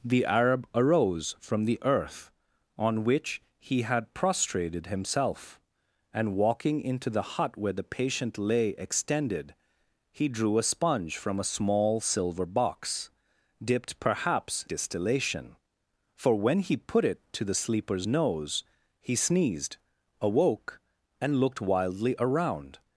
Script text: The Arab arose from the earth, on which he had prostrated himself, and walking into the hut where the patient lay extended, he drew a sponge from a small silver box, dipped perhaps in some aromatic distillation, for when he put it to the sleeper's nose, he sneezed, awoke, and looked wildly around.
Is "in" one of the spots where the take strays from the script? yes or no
yes